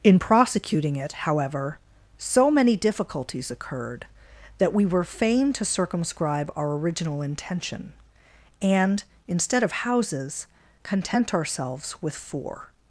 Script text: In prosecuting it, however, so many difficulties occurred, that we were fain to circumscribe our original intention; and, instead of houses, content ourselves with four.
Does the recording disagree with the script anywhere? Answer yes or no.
no